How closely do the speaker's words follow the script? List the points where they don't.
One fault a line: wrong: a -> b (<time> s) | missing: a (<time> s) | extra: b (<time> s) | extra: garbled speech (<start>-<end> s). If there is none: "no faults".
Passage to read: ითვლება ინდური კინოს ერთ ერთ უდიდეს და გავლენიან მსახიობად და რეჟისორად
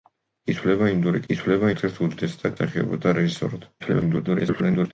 wrong: კინოს -> ითვლება (1.3 s)
missing: გავლენიან (2.5 s)
extra: garbled speech (3.8-4.9 s)